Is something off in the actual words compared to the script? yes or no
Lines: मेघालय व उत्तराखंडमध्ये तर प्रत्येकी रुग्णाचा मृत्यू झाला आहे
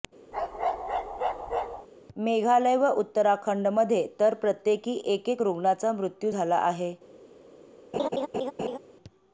yes